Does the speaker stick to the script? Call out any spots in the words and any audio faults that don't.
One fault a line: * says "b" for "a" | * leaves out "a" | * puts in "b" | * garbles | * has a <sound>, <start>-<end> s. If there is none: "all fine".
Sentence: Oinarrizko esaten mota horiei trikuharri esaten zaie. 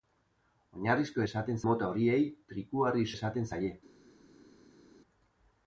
all fine